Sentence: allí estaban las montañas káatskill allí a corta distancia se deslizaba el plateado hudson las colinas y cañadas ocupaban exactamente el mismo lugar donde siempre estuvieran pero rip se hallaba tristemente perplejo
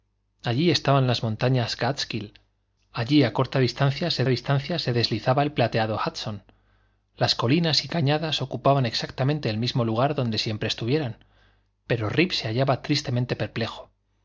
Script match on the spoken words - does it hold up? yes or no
no